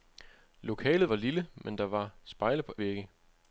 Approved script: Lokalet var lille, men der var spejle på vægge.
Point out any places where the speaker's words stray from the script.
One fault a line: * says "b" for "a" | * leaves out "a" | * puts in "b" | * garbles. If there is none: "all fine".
all fine